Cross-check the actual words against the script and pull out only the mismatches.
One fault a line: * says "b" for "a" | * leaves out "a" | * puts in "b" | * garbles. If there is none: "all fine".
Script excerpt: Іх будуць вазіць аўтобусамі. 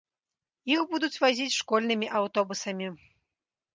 * puts in "школьнымі"